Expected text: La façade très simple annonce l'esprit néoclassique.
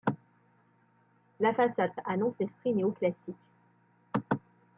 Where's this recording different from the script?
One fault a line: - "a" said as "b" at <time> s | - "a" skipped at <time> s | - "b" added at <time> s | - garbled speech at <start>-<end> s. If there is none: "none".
- "très simple" skipped at 1.9 s